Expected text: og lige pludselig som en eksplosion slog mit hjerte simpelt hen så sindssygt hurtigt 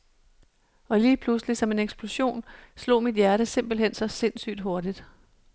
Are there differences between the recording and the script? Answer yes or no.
no